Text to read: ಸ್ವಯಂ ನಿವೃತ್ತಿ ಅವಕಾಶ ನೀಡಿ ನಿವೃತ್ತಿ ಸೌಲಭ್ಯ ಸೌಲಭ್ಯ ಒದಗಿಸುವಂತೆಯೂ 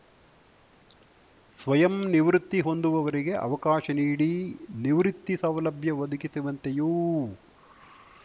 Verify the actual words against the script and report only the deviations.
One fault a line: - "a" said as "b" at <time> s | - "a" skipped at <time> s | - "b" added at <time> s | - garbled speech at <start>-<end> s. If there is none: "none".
- "ಹೊಂದುವವರಿಗೆ" added at 2.6 s
- "ಸೌಲಭ್ಯ" skipped at 5.9 s